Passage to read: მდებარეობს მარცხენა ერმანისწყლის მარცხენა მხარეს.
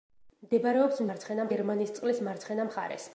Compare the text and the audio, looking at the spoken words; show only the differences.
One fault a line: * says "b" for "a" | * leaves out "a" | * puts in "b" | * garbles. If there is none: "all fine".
all fine